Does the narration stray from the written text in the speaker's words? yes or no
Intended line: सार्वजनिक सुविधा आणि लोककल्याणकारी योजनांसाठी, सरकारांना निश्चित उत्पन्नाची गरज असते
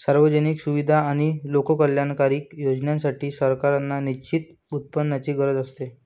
no